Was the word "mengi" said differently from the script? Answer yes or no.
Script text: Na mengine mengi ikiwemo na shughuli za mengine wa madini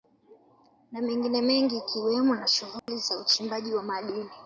no